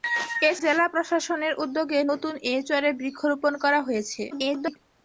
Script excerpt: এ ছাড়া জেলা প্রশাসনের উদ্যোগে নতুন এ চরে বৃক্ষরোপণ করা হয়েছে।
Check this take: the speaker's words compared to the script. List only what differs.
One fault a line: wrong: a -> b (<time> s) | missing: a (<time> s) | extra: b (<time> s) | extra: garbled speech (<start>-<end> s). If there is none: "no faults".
missing: ছাড়া (0.6 s)
extra: garbled speech (4.3-4.8 s)